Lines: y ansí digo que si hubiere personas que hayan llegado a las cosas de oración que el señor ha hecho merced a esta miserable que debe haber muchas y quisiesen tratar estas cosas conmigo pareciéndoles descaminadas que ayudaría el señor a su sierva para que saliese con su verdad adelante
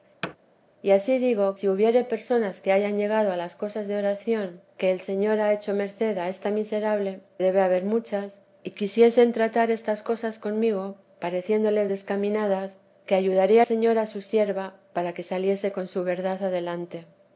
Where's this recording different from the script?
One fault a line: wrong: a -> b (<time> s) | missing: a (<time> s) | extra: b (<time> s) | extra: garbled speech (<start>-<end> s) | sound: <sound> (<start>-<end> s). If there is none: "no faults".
sound: thud (0.2-0.4 s)
missing: que (1.6 s)
missing: que (7.2 s)
missing: el (13.6 s)